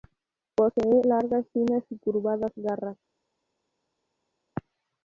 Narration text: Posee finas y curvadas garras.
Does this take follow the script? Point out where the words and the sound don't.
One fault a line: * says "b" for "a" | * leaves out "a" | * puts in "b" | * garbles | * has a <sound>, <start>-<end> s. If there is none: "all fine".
* puts in "largas"